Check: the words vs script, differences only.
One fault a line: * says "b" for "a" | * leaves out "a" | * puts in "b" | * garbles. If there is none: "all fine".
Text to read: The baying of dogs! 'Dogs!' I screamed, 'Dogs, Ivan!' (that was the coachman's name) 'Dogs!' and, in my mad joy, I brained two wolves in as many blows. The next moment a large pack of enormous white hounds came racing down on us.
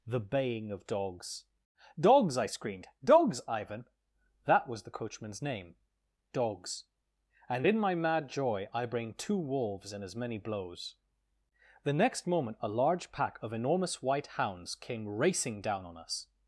* says "bring" for "brained"